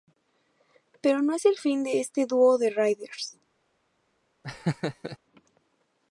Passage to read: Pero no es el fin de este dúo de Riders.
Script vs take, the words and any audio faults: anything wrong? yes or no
yes